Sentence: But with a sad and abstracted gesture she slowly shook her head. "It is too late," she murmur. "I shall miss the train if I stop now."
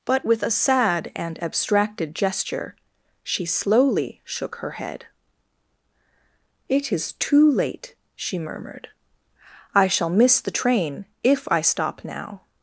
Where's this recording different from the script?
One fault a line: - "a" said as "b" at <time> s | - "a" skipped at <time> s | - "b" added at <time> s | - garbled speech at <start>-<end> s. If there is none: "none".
- "murmur" said as "murmured" at 8.4 s